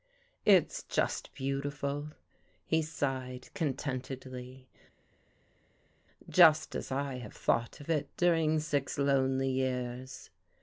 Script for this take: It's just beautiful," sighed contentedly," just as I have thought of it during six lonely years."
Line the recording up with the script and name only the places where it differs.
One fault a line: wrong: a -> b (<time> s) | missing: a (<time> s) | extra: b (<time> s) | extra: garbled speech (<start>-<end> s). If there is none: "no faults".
extra: he (2.6 s)